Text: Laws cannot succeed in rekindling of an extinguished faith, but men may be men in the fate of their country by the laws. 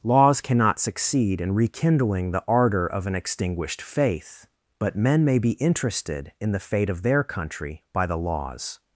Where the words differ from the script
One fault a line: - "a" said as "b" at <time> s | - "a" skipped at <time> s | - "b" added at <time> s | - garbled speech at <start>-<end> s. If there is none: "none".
- "the ardor" added at 2.3 s
- "men" said as "interested" at 5.5 s